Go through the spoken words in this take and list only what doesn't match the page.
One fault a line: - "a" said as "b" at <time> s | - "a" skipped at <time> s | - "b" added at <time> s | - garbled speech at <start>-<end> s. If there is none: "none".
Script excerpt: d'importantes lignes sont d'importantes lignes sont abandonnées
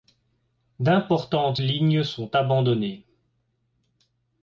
- "d'importantes lignes sont" skipped at 2.3 s